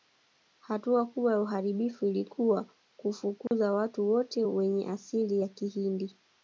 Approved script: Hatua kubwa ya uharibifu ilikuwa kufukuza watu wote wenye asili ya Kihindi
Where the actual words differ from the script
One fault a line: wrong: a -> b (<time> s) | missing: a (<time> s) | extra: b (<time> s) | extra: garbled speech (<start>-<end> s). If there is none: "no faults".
no faults